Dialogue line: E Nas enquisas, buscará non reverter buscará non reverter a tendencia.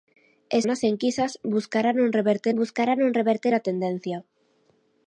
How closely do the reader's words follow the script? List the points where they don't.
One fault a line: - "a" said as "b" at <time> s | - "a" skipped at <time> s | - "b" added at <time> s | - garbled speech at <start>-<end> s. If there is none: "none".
none